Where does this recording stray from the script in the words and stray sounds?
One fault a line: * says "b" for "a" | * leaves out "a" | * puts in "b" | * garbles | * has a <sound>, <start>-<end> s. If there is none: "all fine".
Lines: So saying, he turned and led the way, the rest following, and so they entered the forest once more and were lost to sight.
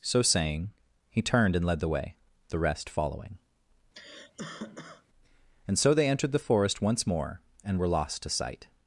* has a cough, 3.9-5.0 s